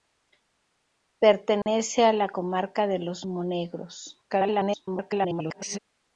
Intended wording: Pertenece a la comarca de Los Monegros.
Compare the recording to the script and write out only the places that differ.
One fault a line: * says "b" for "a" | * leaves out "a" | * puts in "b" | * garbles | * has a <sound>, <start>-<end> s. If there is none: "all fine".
* has a dropout, 1.6-1.7 s
* garbles